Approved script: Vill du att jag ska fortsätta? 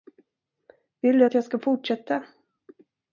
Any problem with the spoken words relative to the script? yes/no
no